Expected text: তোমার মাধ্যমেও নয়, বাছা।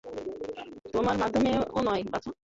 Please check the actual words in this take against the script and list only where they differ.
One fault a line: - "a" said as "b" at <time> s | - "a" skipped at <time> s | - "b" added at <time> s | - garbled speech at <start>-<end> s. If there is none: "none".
none